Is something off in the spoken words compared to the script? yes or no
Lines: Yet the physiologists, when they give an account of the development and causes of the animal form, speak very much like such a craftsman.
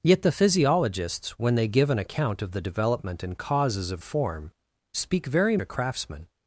yes